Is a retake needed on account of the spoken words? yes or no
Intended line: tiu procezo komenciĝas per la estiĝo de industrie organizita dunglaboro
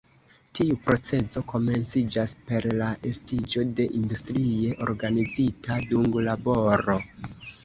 no